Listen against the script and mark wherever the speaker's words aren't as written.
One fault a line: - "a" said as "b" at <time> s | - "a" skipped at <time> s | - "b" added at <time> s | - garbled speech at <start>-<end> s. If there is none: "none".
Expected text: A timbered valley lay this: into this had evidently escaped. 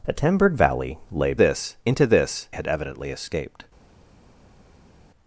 none